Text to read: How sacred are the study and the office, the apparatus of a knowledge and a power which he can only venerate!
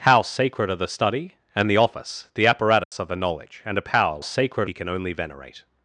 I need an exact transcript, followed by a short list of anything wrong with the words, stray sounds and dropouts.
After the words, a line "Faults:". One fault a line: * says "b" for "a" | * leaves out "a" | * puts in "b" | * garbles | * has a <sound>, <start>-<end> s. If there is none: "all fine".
How sacred are the study and the office, the apparatus of a knowledge and a power sacred he can only venerate!
Faults:
* has a dropout, 2.8-2.9 s
* says "sacred" for "which"